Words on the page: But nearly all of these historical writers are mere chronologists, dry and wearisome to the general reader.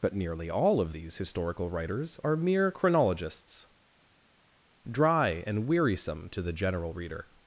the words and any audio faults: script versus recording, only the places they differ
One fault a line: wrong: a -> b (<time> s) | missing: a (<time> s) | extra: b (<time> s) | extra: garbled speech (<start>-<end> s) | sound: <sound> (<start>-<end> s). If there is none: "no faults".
no faults